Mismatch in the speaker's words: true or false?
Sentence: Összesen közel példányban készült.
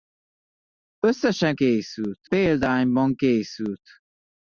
true